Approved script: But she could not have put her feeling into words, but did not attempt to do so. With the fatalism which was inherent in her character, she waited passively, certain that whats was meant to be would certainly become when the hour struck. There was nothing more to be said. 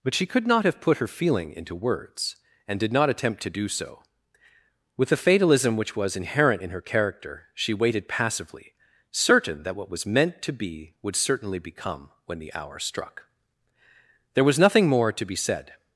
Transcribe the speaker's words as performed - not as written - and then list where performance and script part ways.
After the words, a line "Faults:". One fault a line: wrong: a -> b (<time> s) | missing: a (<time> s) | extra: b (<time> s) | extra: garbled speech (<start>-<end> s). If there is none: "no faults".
But she could not have put her feeling into words, and did not attempt to do so. With the fatalism which was inherent in her character, she waited passively, certain that what was meant to be would certainly become when the hour struck. There was nothing more to be said.
Faults:
wrong: but -> and (2.7 s)
wrong: whats -> what (9.7 s)